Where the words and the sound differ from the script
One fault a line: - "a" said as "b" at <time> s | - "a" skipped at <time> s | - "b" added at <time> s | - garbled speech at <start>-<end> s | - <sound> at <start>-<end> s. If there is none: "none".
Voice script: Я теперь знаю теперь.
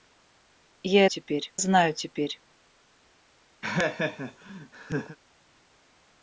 - laugh at 3.6-5.2 s